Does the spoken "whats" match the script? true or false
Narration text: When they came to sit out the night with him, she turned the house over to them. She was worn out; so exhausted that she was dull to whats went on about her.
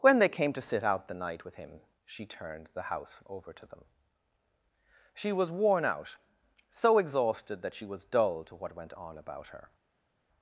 false